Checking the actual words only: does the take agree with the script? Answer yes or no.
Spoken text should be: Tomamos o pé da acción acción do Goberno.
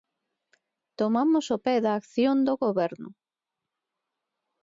no